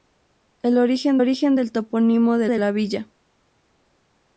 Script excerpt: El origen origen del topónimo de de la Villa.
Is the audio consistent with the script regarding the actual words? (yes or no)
yes